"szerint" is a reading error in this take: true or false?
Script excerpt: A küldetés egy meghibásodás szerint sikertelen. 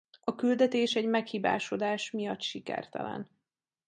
true